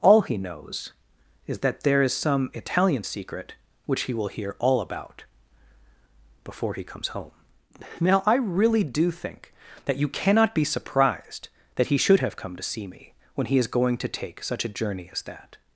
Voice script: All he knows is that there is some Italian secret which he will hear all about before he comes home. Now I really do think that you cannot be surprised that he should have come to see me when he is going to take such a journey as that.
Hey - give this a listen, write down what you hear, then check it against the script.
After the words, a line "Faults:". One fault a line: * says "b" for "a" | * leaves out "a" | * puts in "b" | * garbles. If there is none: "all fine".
All he knows is that there is some Italian secret which he will hear all about before he comes home. Now I really do think that you cannot be surprised that he should have come to see me when he is going to take such a journey as that.
Faults:
all fine